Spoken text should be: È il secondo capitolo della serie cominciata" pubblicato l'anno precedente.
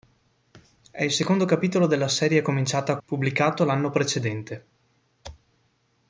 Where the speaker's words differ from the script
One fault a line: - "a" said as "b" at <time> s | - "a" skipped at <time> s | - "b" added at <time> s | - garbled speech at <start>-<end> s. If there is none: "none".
none